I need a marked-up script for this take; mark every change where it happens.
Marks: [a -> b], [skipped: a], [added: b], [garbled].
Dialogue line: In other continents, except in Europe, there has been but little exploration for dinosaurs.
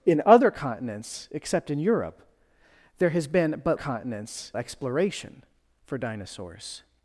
In other continents, except in Europe, there has been but [little -> continents] exploration for dinosaurs.